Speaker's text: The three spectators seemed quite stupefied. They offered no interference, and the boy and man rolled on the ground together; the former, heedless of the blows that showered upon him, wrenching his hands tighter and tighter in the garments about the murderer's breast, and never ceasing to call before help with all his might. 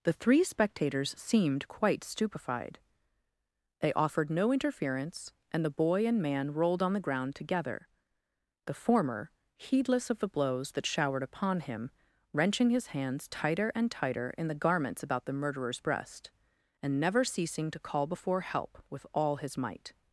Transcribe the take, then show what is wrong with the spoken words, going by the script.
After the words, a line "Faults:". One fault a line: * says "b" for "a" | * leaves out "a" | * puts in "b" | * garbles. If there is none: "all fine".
The three spectators seemed quite stupefied. They offered no interference, and the boy and man rolled on the ground together; the former, heedless of the blows that showered upon him, wrenching his hands tighter and tighter in the garments about the murderer's breast, and never ceasing to call before help with all his might.
Faults:
all fine